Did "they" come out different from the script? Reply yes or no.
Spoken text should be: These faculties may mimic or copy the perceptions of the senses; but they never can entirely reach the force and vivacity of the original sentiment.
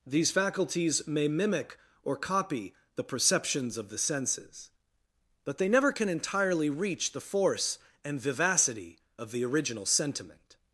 no